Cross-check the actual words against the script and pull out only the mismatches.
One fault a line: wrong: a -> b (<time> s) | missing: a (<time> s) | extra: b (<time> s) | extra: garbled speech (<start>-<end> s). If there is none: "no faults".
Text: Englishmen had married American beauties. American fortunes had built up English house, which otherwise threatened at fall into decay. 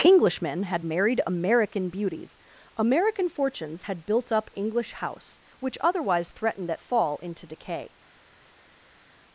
no faults